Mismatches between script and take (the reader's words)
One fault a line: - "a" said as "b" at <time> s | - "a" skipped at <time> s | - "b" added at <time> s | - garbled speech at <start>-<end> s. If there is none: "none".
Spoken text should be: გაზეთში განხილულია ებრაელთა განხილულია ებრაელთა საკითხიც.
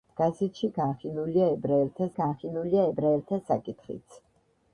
none